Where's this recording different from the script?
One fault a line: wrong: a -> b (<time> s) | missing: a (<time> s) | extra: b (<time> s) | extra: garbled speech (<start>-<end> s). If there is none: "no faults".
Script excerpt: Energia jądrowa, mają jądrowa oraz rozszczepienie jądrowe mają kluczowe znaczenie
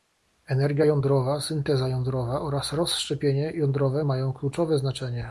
wrong: mają -> synteza (1.4 s)